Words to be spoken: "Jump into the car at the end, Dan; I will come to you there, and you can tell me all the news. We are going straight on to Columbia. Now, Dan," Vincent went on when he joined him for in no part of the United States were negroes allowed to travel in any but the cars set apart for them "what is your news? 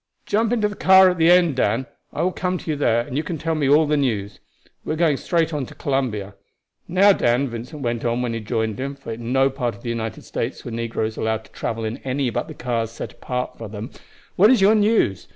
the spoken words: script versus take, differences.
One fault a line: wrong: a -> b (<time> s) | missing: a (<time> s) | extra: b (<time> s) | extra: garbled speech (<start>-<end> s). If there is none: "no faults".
no faults